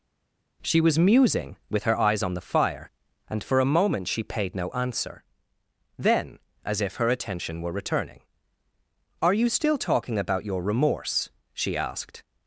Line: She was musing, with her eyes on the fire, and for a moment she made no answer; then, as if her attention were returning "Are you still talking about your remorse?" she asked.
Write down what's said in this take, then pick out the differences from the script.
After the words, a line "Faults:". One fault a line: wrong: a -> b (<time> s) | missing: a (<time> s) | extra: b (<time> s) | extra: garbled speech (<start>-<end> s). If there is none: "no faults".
She was musing, with her eyes on the fire, and for a moment she paid no answer; then, as if her attention were returning "Are you still talking about your remorse?" she asked.
Faults:
wrong: made -> paid (4.2 s)